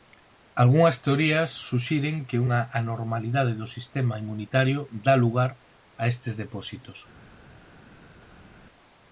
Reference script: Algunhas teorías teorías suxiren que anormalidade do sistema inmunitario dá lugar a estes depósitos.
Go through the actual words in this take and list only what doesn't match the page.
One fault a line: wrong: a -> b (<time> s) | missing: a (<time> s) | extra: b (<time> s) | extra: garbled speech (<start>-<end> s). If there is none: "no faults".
missing: teorías (1.5 s)
extra: unha (2.4 s)